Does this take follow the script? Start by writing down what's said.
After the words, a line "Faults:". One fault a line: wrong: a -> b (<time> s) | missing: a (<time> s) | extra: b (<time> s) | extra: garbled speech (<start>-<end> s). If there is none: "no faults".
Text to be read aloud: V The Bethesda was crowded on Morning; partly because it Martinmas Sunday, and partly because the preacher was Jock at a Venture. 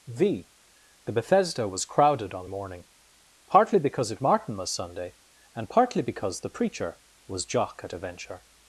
V The Bethesda was crowded on Morning; partly because it Martinmas Sunday, and partly because the preacher was Jock at a Venture.
Faults:
no faults